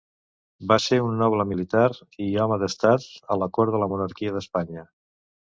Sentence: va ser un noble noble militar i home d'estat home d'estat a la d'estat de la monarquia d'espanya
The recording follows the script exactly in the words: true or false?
false